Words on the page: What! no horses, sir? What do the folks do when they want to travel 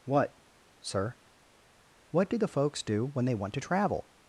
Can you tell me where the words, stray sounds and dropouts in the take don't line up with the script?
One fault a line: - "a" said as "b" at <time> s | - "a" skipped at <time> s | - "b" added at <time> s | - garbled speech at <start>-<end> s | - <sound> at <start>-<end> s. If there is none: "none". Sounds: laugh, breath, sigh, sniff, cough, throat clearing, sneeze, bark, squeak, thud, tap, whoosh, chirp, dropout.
- "no horses" skipped at 0.4 s